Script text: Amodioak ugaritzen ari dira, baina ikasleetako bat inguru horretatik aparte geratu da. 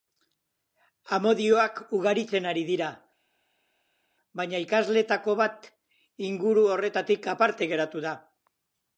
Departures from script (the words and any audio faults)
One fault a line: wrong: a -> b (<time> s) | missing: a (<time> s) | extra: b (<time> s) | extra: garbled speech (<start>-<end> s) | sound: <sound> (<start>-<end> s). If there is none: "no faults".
no faults